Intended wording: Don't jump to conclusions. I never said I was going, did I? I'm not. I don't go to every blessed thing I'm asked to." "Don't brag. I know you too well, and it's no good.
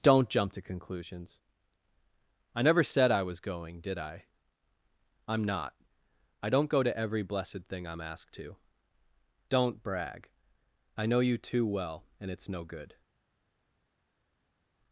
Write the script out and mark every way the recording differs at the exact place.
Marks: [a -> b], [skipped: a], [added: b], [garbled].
Don't jump to conclusions. I never said I was going, did I? I'm not. I don't go to every blessed thing I'm asked to." "Don't brag. I know you too well, and it's no good.